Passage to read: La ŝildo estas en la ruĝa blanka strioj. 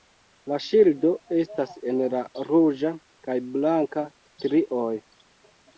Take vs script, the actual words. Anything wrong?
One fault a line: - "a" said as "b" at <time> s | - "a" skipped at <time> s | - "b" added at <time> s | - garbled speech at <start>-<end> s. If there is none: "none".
- "kaj" added at 3.3 s